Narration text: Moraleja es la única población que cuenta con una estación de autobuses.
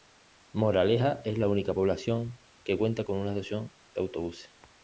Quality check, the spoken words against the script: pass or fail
pass